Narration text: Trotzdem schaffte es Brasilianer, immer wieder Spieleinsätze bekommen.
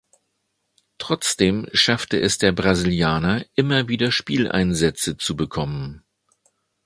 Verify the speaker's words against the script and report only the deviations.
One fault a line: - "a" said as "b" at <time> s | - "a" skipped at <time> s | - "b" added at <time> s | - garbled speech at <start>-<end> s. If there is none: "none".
- "der" added at 2.4 s
- "zu" added at 5.2 s